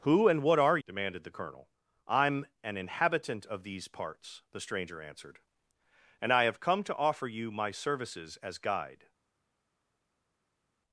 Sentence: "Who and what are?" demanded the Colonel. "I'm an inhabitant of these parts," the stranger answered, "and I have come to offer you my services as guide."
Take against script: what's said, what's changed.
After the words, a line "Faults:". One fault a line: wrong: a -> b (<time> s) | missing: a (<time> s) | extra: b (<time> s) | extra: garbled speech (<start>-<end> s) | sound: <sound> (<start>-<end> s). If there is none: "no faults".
"Who and what are?" demanded the Colonel. "I'm an inhabitant of these parts," the stranger answered, "and I have come to offer you my services as guide."
Faults:
no faults